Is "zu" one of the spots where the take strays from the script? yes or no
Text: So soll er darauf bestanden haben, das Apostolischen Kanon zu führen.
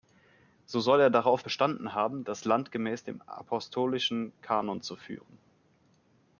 no